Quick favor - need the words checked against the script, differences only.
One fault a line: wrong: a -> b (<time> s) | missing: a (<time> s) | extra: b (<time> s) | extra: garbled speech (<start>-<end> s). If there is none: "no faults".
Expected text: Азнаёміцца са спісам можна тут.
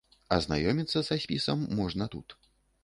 no faults